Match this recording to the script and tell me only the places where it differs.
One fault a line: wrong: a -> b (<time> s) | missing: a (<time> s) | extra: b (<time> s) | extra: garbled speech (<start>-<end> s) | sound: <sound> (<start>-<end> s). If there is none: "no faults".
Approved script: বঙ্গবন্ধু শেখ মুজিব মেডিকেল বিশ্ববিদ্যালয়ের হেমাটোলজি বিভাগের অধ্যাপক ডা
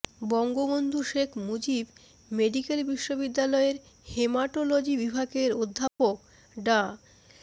sound: dropout (5.9-6.0 s)